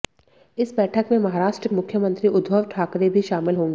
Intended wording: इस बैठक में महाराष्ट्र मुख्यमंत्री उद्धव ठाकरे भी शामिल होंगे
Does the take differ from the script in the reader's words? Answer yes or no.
no